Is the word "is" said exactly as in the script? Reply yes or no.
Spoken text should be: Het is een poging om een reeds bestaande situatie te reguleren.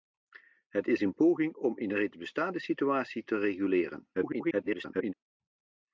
yes